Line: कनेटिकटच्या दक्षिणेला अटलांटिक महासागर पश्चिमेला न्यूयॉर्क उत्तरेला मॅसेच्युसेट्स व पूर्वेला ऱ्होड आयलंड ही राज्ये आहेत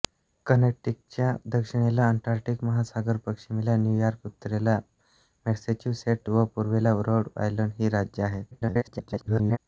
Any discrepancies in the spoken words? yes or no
yes